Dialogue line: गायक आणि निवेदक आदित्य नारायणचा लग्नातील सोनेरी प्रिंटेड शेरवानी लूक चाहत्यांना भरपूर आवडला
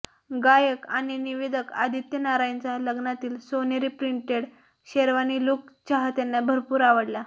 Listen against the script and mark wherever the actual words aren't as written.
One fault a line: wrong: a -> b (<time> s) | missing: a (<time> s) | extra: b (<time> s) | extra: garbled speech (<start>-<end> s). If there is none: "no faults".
no faults